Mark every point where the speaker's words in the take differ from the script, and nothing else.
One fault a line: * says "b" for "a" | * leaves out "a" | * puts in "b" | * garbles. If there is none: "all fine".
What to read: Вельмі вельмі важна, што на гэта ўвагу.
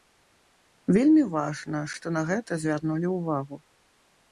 * leaves out "вельмі"
* puts in "звярнулі"